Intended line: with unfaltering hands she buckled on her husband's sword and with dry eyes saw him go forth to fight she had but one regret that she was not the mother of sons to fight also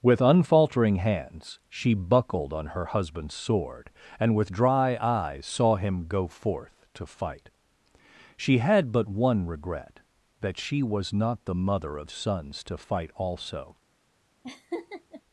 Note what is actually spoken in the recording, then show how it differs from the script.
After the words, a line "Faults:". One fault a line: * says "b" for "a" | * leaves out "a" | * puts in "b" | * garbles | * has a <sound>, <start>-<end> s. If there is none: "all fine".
with unfaltering hands she buckled on her husband's sword and with dry eyes saw him go forth to fight she had but one regret that she was not the mother of sons to fight also
Faults:
* has a laugh, 14.4-15.2 s